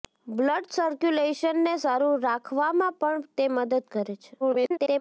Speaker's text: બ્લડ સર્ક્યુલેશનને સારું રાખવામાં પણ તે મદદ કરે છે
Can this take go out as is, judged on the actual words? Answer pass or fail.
fail